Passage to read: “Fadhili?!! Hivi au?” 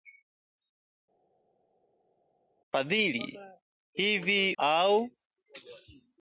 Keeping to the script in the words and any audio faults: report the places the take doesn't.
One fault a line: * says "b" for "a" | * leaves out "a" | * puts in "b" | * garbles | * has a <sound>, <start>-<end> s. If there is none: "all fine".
all fine